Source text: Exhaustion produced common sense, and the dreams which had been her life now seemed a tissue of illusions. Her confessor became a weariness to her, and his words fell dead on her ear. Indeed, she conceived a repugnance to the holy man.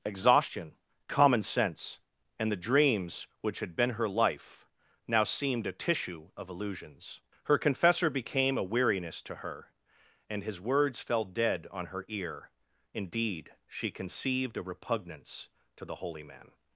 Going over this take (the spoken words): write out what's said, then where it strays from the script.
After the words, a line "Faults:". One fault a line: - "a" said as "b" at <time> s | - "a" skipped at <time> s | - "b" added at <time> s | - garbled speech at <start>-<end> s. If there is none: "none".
Exhaustion common sense, and the dreams which had been her life now seemed a tissue of illusions. Her confessor became a weariness to her, and his words fell dead on her ear. Indeed, she conceived a repugnance to the holy man.
Faults:
- "produced" skipped at 0.7 s